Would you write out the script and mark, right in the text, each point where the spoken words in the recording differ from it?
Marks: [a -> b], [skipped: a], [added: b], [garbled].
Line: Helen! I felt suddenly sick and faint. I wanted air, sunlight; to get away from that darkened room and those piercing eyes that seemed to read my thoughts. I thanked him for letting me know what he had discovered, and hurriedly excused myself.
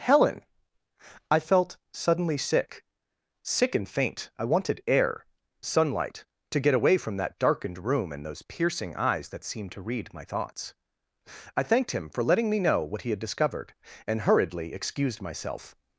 Helen! I felt suddenly sick [added: sick] and faint. I wanted air, sunlight; to get away from that darkened room and those piercing eyes that seemed to read my thoughts. I thanked him for letting me know what he had discovered, and hurriedly excused myself.